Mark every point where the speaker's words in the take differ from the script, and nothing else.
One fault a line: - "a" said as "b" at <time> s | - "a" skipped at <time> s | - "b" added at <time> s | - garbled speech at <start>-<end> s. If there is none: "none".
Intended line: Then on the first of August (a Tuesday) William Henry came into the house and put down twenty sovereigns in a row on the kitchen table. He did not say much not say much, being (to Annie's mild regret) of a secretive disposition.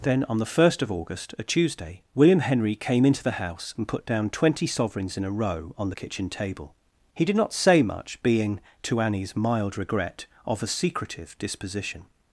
- "not say much" skipped at 8.2 s